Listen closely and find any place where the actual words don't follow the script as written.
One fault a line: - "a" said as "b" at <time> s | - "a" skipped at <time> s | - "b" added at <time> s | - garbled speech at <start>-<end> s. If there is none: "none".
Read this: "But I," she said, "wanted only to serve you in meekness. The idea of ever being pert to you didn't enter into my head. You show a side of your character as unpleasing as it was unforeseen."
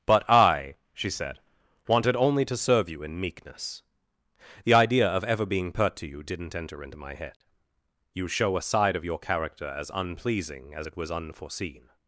none